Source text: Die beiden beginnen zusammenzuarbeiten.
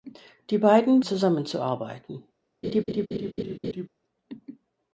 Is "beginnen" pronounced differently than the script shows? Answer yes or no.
yes